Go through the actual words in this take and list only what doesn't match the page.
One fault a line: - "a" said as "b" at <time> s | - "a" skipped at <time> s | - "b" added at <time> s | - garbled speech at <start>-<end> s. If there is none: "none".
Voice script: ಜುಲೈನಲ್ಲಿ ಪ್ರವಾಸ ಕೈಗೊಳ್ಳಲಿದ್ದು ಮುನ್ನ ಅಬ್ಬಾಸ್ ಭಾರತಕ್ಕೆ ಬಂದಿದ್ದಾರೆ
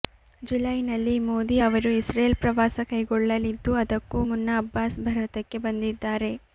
- "ಮೋದಿ ಅವರು ಇಸ್ರೇಲ್" added at 1.2 s
- "ಅದಕ್ಕೂ" added at 3.8 s